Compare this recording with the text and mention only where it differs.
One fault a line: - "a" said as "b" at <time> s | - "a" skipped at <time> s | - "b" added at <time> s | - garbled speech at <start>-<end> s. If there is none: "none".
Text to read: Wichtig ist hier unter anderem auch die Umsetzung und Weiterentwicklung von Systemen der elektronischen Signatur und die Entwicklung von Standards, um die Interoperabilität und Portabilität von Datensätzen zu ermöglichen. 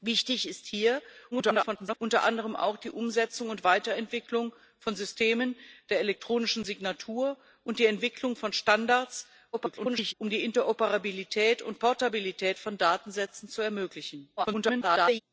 - garbled speech at 1.3-2.0 s
- garbled speech at 9.5-10.1 s
- garbled speech at 14.4-15.2 s